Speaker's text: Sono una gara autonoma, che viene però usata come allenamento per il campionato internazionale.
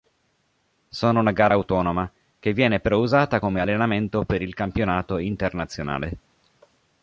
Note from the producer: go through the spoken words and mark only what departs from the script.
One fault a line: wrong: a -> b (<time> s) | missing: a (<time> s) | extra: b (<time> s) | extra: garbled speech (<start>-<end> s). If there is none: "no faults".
no faults